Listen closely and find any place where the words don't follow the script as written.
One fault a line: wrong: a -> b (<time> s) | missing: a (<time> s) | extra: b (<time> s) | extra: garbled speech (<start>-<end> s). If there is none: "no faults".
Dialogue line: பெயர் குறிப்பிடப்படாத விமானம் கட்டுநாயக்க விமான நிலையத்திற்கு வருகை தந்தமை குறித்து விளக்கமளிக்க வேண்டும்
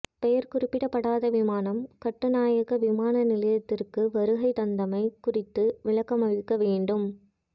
no faults